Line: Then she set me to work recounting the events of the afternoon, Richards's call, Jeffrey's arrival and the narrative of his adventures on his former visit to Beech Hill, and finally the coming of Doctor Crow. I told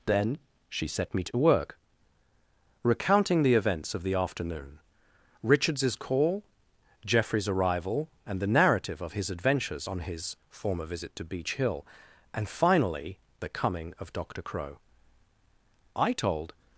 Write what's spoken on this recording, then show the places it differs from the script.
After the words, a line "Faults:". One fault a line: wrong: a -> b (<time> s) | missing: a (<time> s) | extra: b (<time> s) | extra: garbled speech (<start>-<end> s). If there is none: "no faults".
Then she set me to work recounting the events of the afternoon, Richards's call, Jeffrey's arrival and the narrative of his adventures on his former visit to Beech Hill, and finally the coming of Doctor Crow. I told
Faults:
no faults